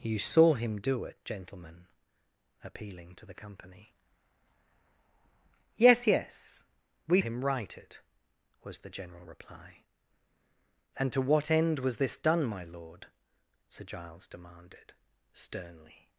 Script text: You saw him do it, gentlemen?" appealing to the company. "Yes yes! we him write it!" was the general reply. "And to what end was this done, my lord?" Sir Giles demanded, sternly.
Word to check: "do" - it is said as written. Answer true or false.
true